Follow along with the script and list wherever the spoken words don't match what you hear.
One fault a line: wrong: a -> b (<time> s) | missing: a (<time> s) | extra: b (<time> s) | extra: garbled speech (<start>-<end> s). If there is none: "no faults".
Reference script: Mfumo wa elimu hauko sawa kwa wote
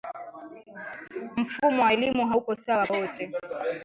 missing: kwa (2.9 s)